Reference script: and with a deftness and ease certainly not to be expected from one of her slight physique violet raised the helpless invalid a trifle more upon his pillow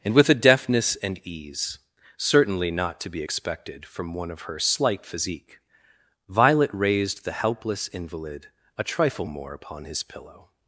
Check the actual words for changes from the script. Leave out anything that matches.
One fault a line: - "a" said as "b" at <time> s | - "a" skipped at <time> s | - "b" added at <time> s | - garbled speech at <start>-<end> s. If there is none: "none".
none